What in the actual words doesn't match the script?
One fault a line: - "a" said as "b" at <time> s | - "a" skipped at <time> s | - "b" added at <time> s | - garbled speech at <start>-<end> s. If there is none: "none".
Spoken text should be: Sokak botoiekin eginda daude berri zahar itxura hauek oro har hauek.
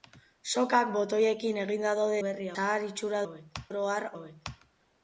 none